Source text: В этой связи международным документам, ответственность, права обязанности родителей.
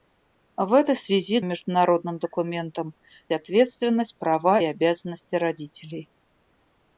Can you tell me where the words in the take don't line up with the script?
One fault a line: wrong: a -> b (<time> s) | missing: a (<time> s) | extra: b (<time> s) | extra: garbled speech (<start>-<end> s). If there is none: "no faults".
no faults